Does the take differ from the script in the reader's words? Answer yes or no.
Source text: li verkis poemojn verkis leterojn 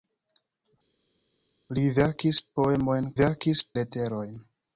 no